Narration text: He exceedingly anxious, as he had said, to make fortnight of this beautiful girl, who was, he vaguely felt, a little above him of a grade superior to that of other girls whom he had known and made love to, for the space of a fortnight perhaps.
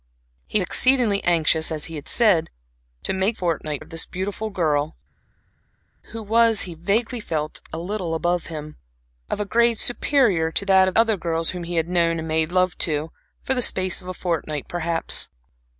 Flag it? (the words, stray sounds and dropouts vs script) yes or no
no